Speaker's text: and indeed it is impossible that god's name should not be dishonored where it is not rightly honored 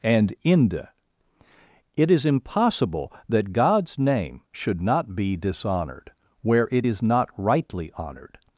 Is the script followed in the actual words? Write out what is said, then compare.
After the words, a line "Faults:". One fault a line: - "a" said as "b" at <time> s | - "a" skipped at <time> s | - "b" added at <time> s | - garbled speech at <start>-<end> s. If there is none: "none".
and inde it is impossible that god's name should not be dishonored where it is not rightly honored
Faults:
- "indeed" said as "inde" at 0.4 s